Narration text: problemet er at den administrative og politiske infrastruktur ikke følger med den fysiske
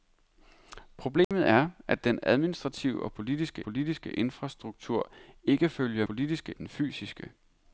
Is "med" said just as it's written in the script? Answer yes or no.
no